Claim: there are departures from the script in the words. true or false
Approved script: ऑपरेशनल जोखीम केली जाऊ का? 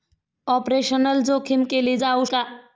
false